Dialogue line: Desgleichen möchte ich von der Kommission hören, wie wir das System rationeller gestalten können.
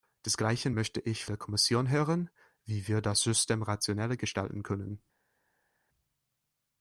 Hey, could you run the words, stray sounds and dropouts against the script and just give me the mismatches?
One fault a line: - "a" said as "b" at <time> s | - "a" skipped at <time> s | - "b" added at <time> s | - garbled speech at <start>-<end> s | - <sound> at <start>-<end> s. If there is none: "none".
- "von" skipped at 1.2 s